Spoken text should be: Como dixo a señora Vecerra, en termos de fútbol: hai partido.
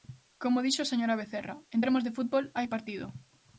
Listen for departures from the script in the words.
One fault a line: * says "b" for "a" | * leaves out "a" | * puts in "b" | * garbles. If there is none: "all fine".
all fine